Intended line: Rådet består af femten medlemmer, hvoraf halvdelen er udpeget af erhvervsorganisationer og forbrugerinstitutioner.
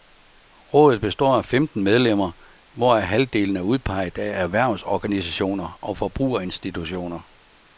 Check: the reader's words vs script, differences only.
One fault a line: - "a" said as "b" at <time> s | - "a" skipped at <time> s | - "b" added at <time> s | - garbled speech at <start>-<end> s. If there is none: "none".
none